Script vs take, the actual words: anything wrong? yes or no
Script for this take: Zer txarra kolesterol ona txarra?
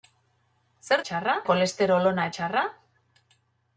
no